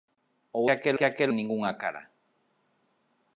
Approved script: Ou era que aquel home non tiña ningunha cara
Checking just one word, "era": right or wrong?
wrong